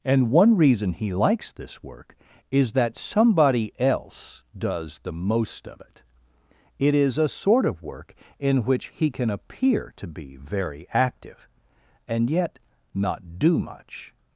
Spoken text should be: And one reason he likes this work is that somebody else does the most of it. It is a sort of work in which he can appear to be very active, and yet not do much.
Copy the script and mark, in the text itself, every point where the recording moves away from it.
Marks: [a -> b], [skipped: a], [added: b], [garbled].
And one reason he likes this work is that somebody else does the most of it. It is a sort of work in which he can appear to be very active, and yet not do much.